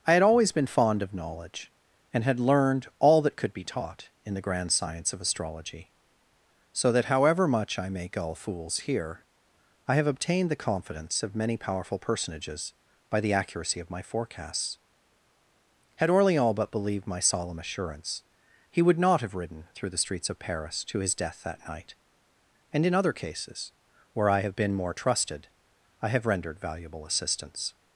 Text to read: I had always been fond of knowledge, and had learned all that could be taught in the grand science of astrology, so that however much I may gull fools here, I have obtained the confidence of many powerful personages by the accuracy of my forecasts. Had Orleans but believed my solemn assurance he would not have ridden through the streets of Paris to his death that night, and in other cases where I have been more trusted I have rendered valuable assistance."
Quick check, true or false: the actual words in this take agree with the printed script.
true